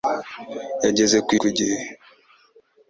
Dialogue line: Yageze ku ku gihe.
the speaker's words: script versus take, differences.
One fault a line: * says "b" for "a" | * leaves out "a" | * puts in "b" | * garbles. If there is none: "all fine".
all fine